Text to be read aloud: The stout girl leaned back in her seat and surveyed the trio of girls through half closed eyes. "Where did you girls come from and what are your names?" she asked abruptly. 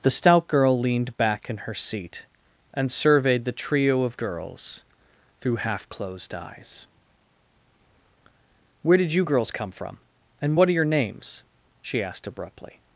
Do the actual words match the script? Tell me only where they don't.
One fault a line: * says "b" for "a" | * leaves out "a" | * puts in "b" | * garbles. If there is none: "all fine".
all fine